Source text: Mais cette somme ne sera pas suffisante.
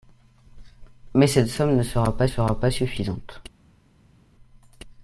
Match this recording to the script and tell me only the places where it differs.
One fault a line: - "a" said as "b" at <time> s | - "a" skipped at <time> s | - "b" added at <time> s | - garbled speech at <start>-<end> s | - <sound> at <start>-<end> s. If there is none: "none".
- "sera pas" added at 2.3 s